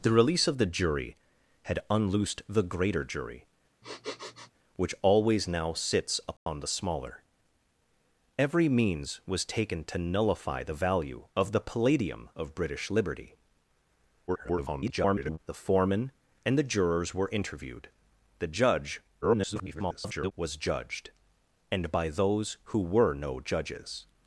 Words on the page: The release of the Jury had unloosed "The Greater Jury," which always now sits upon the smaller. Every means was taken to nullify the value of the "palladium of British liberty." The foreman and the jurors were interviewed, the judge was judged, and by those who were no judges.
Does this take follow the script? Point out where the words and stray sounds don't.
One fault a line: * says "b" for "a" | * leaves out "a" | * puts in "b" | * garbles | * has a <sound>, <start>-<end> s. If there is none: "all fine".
* has a sniff, 3.8-4.5 s
* has a dropout, 6.4-6.5 s
* garbles
* garbles